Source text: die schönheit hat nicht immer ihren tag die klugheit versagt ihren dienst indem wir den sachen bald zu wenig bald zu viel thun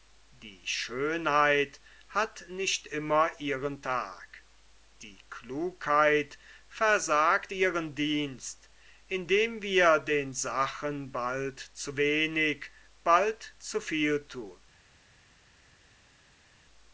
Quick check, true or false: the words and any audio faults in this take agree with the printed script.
true